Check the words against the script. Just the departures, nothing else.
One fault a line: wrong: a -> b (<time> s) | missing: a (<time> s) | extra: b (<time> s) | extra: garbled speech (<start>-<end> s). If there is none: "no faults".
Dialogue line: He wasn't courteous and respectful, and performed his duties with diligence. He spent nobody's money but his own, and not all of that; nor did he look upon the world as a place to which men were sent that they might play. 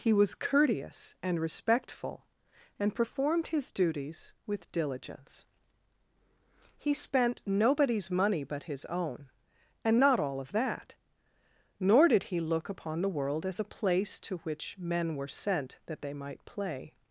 wrong: wasn't -> was (0.1 s)